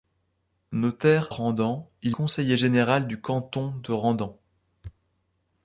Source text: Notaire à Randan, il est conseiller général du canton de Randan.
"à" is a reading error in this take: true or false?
true